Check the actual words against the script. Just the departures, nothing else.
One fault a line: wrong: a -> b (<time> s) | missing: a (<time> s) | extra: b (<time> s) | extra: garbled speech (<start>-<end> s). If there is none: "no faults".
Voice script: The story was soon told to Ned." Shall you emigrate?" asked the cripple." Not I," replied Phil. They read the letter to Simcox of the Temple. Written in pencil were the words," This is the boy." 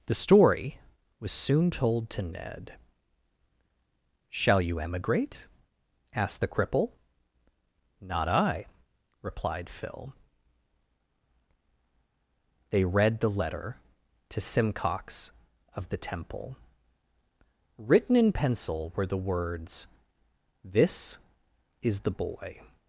no faults